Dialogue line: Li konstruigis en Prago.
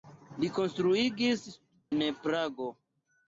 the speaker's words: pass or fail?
pass